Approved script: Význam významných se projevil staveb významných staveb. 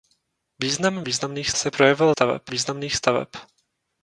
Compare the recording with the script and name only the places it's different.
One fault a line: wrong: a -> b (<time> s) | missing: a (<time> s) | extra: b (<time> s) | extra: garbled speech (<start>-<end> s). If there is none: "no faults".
no faults